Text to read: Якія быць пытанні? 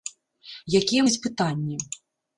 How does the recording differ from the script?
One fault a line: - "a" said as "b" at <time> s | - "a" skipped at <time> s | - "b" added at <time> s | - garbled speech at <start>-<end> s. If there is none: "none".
none